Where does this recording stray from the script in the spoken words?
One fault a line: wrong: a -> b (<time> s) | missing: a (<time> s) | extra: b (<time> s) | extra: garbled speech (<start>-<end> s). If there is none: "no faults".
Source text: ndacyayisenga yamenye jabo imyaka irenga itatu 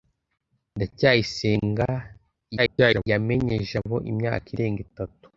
extra: garbled speech (2.6-3.1 s)